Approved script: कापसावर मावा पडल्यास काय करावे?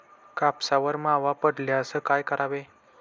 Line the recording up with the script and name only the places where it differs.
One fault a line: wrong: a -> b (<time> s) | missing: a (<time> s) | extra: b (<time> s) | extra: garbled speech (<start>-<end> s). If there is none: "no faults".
no faults